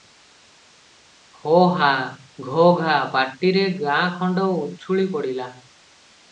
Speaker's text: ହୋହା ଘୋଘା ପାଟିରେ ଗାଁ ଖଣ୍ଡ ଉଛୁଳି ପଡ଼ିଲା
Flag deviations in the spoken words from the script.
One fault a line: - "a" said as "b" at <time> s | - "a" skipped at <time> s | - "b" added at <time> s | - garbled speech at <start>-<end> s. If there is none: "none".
none